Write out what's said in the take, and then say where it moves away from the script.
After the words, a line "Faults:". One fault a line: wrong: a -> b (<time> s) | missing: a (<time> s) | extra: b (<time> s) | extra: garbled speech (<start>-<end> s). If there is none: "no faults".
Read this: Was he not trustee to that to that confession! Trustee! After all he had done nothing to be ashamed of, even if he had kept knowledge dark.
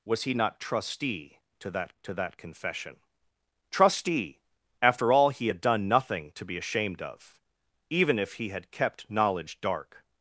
Was he not trustee to that to that confession! Trustee! After all he had done nothing to be ashamed of, even if he had kept knowledge dark.
Faults:
no faults